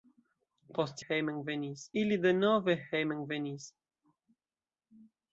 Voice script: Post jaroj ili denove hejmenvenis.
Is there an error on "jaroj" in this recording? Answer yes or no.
yes